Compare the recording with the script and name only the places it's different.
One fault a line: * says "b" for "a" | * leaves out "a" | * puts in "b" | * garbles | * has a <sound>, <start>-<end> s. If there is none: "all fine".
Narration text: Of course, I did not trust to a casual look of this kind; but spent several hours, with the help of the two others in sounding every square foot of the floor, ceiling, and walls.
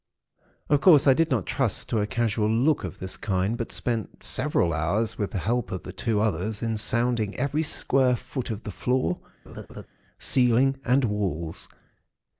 * has a laugh, 9.5-9.9 s